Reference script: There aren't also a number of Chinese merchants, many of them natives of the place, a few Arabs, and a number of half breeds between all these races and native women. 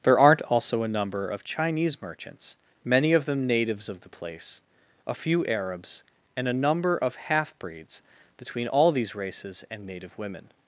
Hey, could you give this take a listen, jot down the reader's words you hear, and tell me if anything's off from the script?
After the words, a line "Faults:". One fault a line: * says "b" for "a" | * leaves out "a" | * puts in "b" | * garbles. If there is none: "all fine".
There aren't also a number of Chinese merchants, many of them natives of the place, a few Arabs, and a number of half breeds between all these races and native women.
Faults:
all fine